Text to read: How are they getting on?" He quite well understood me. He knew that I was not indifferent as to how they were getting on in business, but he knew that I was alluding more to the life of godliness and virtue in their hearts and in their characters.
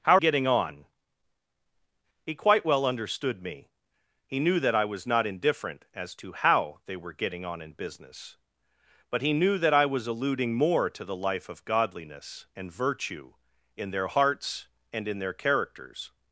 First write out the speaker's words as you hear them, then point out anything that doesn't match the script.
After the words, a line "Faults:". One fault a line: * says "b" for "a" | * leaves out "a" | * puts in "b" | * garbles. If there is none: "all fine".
How getting on?" He quite well understood me. He knew that I was not indifferent as to how they were getting on in business, but he knew that I was alluding more to the life of godliness and virtue in their hearts and in their characters.
Faults:
* leaves out "are they"